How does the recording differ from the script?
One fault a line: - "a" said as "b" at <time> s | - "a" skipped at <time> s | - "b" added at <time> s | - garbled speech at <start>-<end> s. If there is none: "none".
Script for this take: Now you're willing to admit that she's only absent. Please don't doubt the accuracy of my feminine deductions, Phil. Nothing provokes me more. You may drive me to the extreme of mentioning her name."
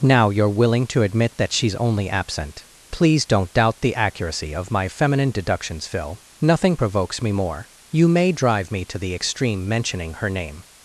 - "of" skipped at 9.7 s